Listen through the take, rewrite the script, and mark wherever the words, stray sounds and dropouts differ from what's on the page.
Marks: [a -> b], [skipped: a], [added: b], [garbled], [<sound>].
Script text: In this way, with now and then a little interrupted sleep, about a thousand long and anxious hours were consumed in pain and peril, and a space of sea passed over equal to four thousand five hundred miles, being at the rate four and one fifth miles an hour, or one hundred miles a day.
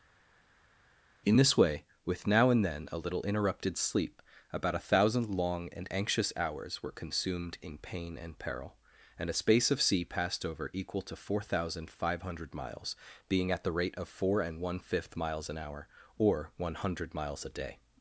In this way, with now and then a little interrupted sleep, about a thousand long and anxious hours were consumed in pain and peril, and a space of sea passed over equal to four thousand five hundred miles, being at the rate [added: of] four and one fifth miles an hour, or one hundred miles a day.